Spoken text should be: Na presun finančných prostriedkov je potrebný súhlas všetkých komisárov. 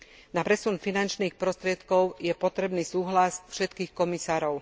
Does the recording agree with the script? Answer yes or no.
yes